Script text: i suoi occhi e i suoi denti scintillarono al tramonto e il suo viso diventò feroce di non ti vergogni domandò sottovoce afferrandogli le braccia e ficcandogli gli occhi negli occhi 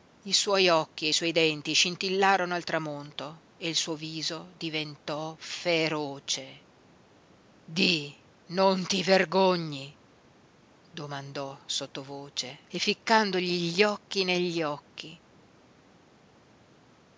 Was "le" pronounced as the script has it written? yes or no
no